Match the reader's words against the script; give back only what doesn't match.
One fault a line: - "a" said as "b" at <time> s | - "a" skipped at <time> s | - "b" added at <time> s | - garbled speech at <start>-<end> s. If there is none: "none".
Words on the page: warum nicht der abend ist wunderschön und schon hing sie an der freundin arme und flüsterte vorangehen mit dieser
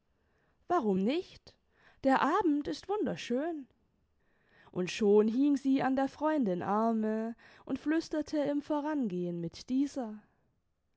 - "im" added at 8.4 s